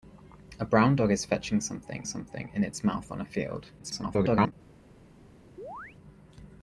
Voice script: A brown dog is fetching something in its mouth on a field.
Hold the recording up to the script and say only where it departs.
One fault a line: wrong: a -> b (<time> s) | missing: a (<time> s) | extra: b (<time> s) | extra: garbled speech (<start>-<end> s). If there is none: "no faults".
extra: something (2.1 s)
extra: garbled speech (3.8-4.5 s)